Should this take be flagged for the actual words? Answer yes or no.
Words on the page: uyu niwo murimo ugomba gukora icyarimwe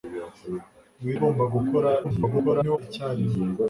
yes